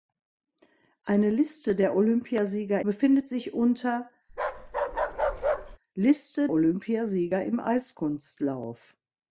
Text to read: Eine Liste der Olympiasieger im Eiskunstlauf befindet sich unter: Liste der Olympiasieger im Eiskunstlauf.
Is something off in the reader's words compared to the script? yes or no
yes